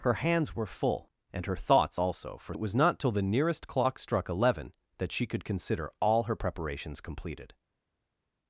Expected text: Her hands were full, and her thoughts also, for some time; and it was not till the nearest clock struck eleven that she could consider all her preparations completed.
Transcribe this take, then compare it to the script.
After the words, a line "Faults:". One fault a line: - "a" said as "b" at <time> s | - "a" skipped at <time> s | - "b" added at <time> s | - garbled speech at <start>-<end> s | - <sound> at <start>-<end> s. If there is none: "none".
Her hands were full, and her thoughts also, for it was not till the nearest clock struck eleven that she could consider all her preparations completed.
Faults:
- "some time and" skipped at 2.5 s